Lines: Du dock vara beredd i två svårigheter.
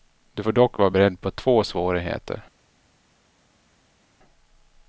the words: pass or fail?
fail